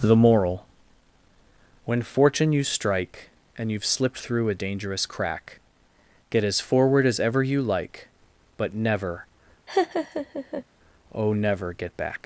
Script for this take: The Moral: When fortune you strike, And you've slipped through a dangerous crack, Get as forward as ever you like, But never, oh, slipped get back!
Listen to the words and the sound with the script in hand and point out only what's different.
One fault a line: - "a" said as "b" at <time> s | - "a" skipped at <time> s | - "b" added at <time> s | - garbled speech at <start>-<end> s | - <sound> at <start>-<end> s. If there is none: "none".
- laugh at 9.7-10.6 s
- "slipped" said as "never" at 11.3 s